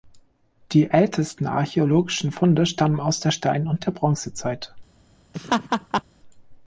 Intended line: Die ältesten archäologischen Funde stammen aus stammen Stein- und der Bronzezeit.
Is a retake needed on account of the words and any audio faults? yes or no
yes